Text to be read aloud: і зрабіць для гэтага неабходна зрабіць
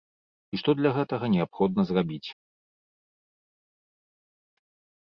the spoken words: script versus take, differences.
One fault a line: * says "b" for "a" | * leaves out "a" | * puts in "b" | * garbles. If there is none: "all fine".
* says "што" for "зрабіць"